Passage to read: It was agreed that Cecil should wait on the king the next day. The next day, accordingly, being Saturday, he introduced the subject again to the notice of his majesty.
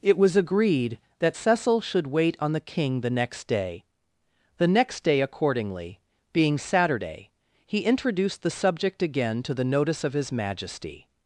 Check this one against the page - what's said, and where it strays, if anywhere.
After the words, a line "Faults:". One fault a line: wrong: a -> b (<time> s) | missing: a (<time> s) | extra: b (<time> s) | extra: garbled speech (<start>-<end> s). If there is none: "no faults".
It was agreed that Cecil should wait on the king the next day. The next day, accordingly, being Saturday, he introduced the subject again to the notice of his majesty.
Faults:
no faults